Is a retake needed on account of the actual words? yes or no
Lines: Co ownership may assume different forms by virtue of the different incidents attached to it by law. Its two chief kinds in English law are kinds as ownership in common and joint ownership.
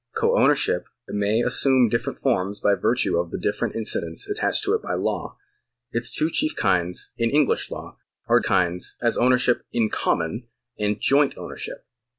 no